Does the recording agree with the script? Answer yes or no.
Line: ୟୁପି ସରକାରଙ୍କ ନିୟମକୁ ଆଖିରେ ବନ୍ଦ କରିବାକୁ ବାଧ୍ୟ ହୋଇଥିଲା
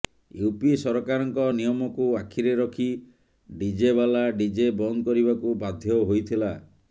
no